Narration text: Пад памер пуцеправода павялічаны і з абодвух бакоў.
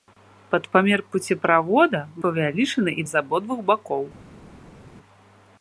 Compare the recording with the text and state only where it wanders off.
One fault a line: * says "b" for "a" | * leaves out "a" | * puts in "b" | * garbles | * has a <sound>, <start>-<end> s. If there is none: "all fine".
all fine